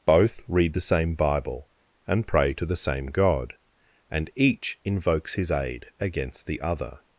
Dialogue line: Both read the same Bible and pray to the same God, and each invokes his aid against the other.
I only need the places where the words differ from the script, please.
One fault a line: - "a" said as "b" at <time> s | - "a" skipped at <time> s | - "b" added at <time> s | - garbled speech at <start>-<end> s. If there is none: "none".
none